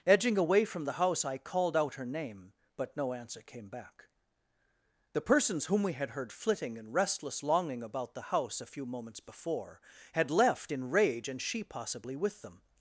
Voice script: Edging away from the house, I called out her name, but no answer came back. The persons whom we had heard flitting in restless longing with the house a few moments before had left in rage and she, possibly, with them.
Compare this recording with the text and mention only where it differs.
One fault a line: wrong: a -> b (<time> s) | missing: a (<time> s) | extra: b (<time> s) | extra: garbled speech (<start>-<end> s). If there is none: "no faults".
wrong: with -> about (7.8 s)